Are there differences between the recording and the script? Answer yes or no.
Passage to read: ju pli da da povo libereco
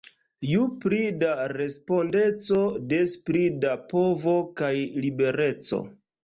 yes